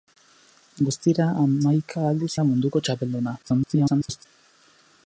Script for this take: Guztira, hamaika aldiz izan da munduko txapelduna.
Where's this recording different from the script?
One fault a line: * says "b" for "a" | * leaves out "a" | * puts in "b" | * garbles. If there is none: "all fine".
* leaves out "izan"
* garbles